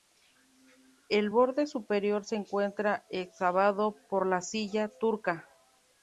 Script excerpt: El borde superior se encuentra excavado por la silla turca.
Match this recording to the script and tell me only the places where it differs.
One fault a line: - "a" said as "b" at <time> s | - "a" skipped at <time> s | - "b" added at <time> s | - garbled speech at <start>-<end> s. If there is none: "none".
none